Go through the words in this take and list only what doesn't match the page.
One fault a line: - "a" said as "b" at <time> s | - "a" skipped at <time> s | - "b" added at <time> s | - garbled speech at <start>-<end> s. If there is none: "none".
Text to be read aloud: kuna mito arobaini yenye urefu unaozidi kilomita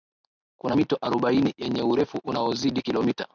none